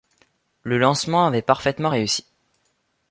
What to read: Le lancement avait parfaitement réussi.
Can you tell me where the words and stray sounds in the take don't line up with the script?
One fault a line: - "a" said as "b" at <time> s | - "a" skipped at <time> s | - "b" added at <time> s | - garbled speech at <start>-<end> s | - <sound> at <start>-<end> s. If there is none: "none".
none